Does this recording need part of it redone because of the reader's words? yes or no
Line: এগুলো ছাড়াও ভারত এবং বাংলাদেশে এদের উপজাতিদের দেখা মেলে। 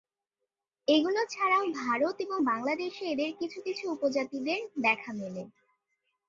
yes